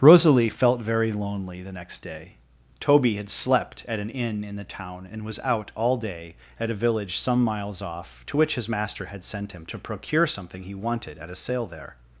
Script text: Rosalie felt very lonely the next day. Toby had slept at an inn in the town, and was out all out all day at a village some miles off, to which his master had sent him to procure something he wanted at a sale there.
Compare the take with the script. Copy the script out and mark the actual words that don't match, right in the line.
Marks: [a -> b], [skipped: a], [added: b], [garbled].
Rosalie felt very lonely the next day. Toby had slept at an inn in the town, and was out all [skipped: out all] day at a village some miles off, to which his master had sent him to procure something he wanted at a sale there.